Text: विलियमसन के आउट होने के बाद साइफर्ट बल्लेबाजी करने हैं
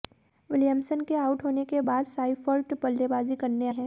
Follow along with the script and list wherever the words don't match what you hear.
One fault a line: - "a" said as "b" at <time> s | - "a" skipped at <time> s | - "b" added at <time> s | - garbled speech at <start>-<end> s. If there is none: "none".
none